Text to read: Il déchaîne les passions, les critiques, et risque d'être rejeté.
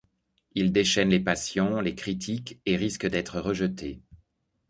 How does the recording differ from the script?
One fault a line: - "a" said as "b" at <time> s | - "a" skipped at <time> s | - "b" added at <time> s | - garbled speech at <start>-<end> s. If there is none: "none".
none